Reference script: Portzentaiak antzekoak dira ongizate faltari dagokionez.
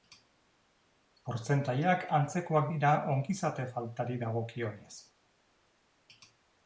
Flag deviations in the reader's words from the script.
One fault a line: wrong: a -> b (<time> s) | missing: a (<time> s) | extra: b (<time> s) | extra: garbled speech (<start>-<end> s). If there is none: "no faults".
no faults